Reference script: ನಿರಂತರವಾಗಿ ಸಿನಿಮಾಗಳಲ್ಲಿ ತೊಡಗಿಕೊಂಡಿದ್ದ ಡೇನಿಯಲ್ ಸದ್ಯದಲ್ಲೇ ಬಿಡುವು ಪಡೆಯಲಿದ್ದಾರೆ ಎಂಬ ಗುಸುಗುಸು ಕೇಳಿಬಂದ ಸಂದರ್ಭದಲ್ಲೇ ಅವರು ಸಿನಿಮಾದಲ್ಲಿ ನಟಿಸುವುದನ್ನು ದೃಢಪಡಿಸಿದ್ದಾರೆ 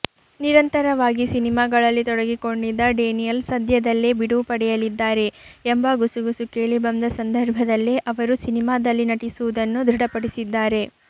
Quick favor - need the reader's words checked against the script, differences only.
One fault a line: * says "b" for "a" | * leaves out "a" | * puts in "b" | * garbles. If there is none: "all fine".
all fine